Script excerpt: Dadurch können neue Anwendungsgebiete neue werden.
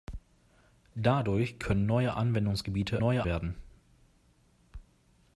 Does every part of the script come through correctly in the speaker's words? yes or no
yes